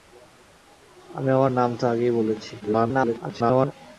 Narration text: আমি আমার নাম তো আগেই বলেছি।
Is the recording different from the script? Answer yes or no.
yes